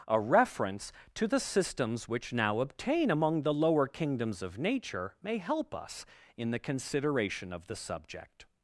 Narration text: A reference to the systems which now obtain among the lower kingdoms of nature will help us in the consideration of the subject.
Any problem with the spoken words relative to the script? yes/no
yes